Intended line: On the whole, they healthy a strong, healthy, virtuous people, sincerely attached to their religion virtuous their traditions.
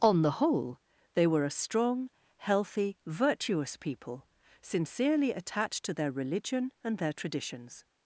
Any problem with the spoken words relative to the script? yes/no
yes